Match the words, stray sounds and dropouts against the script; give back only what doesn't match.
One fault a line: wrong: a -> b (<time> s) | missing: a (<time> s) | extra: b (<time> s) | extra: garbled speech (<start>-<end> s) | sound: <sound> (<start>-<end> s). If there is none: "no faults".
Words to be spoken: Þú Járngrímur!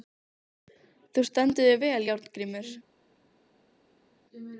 extra: stendur þig vel (1.3 s)